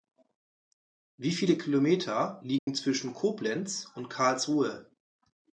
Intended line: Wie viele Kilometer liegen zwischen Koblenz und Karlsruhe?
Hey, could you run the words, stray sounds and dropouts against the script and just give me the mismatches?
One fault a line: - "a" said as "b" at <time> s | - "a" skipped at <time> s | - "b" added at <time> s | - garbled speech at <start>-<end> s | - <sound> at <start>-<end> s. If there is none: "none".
- dropout at 2.6-2.7 s